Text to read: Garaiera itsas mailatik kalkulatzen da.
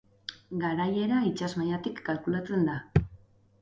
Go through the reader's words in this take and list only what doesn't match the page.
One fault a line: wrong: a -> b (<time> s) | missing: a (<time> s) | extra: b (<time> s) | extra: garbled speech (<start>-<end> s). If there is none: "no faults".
no faults